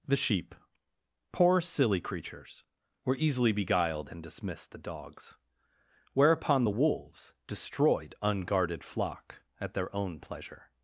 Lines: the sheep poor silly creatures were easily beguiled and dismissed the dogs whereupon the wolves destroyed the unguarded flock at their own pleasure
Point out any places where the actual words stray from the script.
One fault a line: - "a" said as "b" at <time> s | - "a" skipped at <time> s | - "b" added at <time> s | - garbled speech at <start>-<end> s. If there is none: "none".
- "the" skipped at 8.1 s